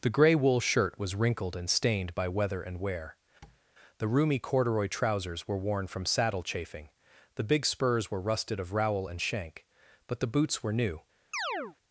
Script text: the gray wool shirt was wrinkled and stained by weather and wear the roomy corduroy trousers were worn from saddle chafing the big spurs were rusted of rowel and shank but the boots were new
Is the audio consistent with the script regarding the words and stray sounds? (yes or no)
no